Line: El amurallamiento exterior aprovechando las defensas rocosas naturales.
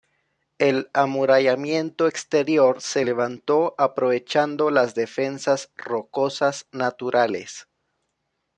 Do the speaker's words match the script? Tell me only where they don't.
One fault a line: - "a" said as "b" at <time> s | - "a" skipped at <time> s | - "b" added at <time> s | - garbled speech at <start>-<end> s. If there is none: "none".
- "se levantó" added at 2.8 s